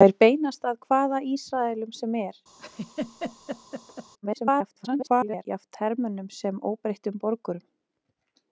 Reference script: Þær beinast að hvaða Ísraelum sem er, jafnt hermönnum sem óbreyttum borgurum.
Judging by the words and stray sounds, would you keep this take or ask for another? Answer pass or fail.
fail